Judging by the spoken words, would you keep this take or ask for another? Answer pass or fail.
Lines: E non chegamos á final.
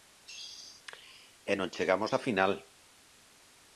pass